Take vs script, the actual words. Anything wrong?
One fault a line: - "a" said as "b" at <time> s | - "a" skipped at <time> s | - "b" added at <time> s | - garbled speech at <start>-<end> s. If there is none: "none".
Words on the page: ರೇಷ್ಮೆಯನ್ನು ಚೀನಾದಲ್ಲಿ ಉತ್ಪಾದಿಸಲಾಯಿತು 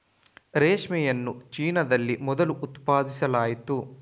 - "ಮೊದಲು" added at 2.2 s